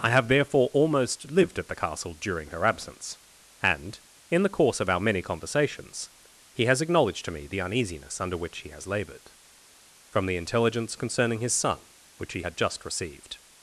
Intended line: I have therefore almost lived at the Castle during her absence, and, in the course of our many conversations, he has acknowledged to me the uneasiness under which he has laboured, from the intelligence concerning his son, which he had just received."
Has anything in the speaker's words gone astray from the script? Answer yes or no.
no